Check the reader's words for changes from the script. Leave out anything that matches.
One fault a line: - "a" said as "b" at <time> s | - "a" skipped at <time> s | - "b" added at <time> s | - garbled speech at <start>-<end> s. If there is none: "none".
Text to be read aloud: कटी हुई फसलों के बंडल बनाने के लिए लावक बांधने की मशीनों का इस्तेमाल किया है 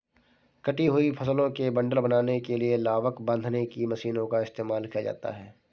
- "जाता" added at 5.0 s